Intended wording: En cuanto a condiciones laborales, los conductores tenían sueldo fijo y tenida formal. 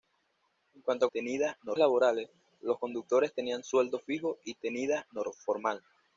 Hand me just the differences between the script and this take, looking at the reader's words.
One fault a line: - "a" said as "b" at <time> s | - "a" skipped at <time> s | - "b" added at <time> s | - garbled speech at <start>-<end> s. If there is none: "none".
- "condiciones" said as "tenida" at 1.0 s